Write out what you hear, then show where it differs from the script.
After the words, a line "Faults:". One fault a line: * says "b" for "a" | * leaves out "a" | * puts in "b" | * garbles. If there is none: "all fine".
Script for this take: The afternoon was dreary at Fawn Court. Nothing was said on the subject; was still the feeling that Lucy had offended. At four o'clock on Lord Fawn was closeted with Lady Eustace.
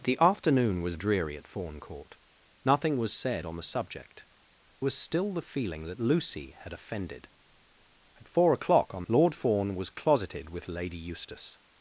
The afternoon was dreary at Fawn Court. Nothing was said on the subject; was still the feeling that Lucy had offended. At four o'clock on Lord Fawn was closeted with Lady Eustace.
Faults:
all fine